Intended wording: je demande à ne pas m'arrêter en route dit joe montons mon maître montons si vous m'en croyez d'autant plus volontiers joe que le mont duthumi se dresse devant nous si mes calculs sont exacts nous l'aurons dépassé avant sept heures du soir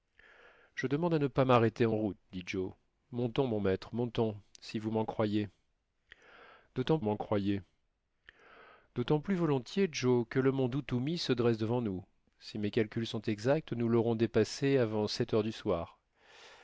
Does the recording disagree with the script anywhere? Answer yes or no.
yes